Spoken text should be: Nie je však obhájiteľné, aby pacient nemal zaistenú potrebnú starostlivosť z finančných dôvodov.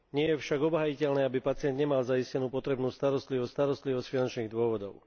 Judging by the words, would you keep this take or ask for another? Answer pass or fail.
fail